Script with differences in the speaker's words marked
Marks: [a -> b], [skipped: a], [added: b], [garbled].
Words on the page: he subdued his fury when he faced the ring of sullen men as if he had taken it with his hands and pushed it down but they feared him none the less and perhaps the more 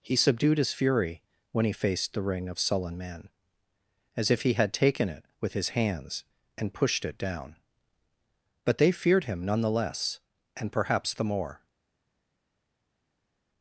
he subdued his fury when he faced the ring of sullen men as if he had taken it with his hands and pushed it down but they feared him none the less and perhaps the more